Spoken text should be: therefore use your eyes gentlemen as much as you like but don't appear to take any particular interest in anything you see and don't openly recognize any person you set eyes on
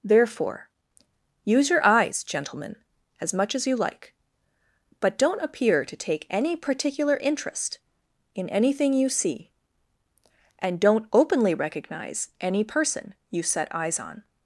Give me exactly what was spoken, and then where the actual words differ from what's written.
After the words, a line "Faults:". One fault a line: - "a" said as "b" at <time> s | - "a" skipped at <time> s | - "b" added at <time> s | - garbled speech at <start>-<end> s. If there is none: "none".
therefore use your eyes gentlemen as much as you like but don't appear to take any particular interest in anything you see and don't openly recognize any person you set eyes on
Faults:
none